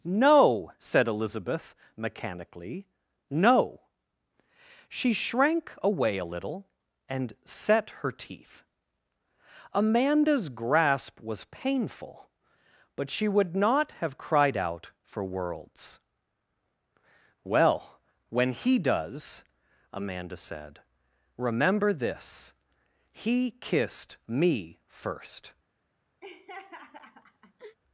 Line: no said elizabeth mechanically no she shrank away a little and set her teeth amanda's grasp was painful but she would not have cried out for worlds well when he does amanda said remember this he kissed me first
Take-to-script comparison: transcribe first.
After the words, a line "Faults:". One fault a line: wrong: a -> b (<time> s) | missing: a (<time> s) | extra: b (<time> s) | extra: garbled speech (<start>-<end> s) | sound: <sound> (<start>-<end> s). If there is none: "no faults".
no said elizabeth mechanically no she shrank away a little and set her teeth amanda's grasp was painful but she would not have cried out for worlds well when he does amanda said remember this he kissed me first
Faults:
sound: laugh (26.2-27.8 s)